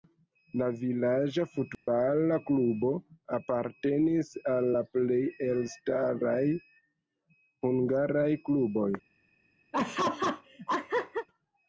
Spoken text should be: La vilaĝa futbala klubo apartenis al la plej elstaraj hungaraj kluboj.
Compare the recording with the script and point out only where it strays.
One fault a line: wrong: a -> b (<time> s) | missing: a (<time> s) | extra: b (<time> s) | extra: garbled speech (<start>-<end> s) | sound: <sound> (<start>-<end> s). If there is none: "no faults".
sound: dropout (1.7-1.9 s)
sound: laugh (9.7-11.3 s)